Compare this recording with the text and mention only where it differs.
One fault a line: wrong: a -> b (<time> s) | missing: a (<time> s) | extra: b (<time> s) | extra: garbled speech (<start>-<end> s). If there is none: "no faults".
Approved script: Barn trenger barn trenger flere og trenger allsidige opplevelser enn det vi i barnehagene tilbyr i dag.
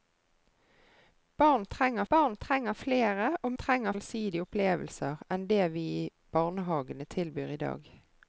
no faults